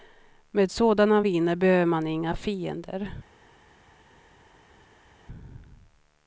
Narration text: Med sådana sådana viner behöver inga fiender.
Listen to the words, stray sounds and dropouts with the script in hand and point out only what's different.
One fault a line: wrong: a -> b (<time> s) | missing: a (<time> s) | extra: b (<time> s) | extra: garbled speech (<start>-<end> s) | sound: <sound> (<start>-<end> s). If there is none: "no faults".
missing: sådana (1.2 s)
extra: man (1.9 s)